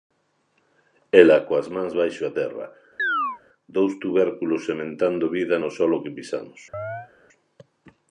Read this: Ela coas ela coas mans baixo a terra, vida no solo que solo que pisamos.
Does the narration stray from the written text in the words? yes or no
yes